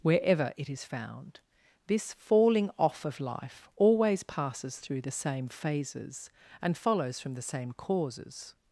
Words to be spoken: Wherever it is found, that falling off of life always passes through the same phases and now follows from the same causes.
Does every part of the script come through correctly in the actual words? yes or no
no